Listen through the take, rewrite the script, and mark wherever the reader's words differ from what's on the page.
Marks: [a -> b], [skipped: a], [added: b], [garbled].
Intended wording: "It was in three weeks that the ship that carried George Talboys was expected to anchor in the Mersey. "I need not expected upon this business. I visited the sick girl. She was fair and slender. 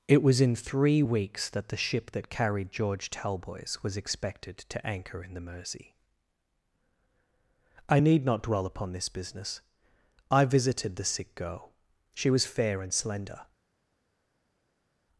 "It was in three weeks that the ship that carried George Talboys was expected to anchor in the Mersey. "I need not [expected -> dwell] upon this business. I visited the sick girl. She was fair and slender.